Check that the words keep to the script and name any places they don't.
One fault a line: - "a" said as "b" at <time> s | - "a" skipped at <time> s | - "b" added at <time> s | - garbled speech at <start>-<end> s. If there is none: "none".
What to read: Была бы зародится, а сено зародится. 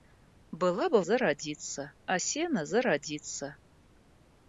none